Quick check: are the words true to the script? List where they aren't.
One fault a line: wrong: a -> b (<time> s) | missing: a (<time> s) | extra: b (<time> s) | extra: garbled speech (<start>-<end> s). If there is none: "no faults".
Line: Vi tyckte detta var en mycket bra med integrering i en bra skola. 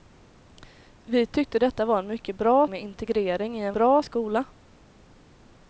no faults